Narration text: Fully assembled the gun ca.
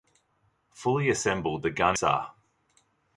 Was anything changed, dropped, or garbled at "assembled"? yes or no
no